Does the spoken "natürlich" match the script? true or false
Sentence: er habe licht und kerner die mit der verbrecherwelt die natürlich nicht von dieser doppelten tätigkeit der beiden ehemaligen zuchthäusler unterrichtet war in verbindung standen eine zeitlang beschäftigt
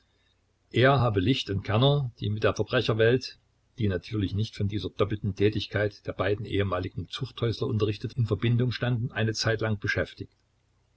true